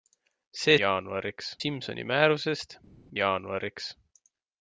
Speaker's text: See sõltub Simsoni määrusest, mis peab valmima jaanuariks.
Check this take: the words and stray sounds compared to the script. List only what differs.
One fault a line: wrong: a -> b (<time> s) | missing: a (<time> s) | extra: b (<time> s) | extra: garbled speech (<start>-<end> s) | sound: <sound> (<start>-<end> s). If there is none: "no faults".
wrong: sõltub -> jaanuariks (0.8 s)
missing: mis peab valmima (2.8 s)